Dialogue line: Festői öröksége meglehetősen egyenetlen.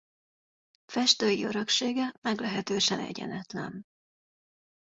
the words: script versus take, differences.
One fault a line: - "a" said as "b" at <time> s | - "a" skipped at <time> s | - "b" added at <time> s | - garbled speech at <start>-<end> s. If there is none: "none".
none